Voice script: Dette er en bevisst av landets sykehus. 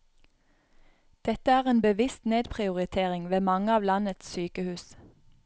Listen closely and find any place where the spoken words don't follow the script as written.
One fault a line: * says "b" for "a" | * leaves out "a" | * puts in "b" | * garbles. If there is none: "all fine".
* puts in "nedprioritering ved mange"